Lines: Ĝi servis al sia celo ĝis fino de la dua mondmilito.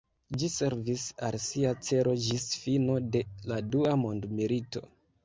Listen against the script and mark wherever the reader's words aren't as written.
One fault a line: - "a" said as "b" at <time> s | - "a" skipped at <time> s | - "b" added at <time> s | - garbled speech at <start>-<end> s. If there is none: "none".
none